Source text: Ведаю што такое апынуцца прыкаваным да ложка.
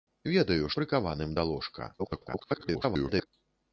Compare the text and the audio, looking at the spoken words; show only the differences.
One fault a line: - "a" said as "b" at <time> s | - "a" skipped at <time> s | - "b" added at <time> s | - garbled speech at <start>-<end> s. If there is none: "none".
- "што такое апынуцца" skipped at 0.7 s
- garbled speech at 2.0-3.3 s